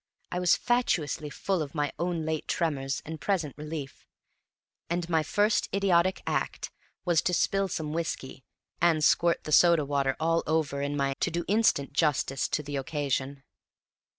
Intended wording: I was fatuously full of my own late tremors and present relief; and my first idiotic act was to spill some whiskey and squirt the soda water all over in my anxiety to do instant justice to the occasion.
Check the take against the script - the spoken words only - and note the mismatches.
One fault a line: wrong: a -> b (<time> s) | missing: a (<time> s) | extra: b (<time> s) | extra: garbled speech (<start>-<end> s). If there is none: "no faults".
missing: anxiety (11.1 s)